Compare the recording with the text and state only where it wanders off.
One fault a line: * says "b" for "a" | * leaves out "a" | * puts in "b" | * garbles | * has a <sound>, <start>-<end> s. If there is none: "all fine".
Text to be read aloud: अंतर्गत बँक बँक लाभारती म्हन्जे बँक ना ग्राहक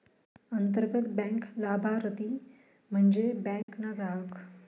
* leaves out "बँक"
* has a dropout, 3.6-3.7 s